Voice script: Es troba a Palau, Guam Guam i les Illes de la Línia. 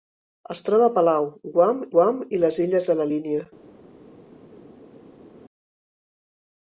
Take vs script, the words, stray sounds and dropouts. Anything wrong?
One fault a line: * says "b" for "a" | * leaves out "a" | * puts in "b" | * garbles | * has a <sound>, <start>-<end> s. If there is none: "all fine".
all fine